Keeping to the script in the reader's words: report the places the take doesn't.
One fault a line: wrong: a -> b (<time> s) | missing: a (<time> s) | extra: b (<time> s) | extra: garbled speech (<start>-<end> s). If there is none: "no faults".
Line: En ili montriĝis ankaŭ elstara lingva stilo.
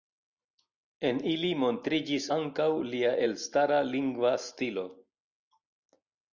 extra: lia (2.9 s)